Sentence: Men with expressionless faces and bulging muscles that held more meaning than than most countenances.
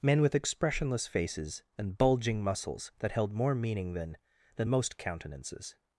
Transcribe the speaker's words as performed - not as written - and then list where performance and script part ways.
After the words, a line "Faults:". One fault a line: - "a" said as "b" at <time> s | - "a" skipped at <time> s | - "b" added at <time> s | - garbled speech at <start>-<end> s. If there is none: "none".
Men with expressionless faces and bulging muscles that held more meaning than than most countenances.
Faults:
none